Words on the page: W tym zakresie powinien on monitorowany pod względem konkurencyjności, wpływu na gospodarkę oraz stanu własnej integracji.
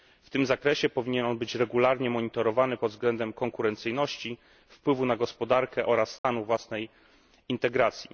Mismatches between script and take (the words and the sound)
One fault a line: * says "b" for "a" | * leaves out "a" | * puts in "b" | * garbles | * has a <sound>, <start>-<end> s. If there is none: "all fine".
* puts in "być regularnie"
* has a dropout, 6.2-6.2 s